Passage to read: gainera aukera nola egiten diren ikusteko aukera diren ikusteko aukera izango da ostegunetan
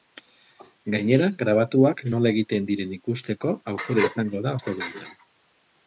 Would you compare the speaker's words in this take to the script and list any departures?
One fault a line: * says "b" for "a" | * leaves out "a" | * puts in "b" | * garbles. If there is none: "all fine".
* says "grabatuak" for "aukera"
* leaves out "diren ikusteko aukera"